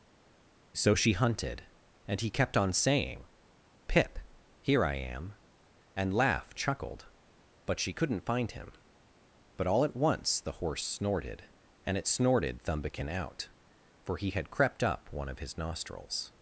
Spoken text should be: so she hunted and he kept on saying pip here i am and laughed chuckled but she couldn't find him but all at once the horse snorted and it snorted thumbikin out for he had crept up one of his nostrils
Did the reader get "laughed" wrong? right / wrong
right